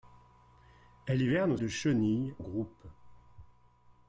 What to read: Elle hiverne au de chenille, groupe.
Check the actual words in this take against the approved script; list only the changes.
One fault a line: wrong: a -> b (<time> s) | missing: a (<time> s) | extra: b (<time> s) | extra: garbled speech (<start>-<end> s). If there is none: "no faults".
no faults